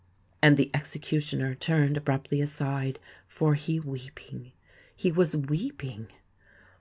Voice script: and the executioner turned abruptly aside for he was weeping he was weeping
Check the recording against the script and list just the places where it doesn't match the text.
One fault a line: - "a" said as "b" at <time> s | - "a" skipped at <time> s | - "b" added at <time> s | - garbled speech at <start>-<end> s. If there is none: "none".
- "was" skipped at 3.8 s